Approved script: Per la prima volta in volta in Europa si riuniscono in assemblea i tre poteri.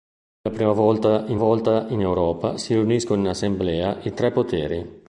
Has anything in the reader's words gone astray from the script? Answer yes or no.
no